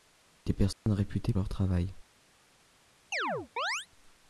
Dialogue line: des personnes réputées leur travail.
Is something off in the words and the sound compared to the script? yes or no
yes